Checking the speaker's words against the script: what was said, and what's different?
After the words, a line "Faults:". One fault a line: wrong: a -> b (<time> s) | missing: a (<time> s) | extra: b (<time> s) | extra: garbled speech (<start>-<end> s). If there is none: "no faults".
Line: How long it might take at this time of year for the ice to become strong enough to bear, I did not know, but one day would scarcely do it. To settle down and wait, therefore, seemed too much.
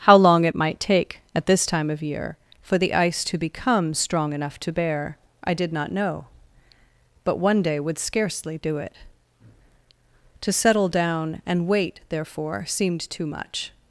How long it might take at this time of year for the ice to become strong enough to bear, I did not know, but one day would scarcely do it. To settle down and wait, therefore, seemed too much.
Faults:
no faults